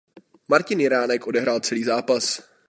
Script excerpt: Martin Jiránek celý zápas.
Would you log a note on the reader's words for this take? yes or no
yes